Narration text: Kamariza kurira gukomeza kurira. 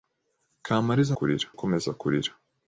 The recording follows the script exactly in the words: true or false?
true